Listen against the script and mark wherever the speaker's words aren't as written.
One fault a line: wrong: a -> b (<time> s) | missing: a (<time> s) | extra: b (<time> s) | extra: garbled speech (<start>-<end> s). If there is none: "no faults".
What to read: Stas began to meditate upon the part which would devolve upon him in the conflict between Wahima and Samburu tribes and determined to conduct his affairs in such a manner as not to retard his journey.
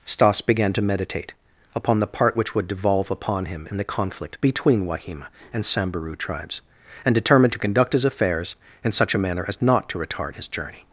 no faults